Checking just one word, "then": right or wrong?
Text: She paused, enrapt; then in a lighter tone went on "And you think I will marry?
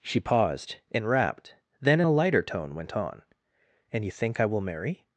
right